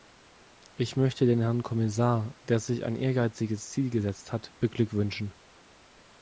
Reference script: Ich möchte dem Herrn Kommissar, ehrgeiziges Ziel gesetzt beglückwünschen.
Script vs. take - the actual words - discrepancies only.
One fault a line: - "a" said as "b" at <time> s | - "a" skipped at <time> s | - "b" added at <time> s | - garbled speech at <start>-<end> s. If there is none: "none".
- "dem" said as "den" at 1.3 s
- "der sich ein" added at 2.4 s
- "hat" added at 4.3 s